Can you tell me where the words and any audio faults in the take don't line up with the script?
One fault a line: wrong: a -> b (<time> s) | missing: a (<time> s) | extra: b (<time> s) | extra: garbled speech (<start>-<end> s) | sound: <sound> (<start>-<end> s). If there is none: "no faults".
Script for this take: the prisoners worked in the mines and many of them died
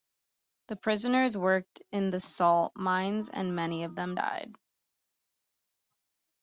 extra: salt (2.2 s)